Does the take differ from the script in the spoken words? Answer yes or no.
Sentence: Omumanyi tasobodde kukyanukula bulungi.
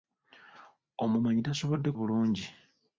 yes